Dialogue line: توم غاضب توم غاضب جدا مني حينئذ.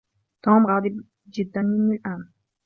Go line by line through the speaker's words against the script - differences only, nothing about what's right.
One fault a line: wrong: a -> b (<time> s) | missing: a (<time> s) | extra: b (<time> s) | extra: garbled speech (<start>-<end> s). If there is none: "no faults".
missing: توم غاضب (1.0 s)
wrong: حينئذ -> الآن (1.9 s)